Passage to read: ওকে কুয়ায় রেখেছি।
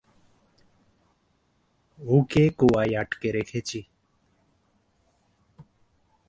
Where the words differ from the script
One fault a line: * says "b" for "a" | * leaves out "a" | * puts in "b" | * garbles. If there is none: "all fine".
* puts in "আটকে"